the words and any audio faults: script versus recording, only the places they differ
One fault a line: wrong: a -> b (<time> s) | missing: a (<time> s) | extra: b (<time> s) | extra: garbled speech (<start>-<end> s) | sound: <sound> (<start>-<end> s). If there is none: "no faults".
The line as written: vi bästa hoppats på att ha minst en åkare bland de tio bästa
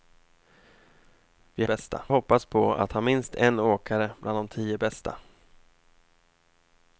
no faults